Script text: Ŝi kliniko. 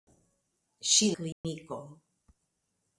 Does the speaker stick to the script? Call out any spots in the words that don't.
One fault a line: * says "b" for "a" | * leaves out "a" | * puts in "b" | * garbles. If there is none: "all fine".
all fine